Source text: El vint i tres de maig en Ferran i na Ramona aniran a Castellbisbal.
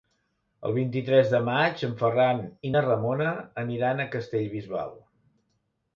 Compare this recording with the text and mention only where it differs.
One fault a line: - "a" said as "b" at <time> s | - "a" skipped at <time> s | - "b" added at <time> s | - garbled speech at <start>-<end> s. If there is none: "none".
none